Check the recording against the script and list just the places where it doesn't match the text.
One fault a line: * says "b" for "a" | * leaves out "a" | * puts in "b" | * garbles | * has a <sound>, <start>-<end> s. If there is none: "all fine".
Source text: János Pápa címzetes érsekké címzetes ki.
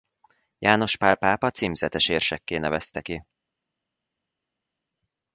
* puts in "Pál"
* says "nevezte" for "címzetes"